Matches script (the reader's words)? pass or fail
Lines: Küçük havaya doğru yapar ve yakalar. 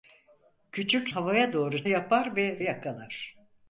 pass